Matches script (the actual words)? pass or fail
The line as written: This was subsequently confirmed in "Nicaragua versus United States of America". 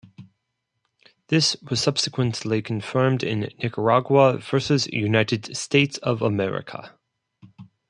pass